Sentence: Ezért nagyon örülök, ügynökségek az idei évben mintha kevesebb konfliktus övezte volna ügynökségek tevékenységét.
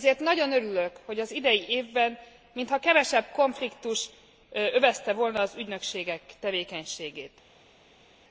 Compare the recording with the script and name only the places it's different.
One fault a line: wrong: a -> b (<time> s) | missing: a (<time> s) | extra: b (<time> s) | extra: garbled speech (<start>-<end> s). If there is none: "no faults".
wrong: ügynökségek -> hogy (1.1 s)
extra: az (5.4 s)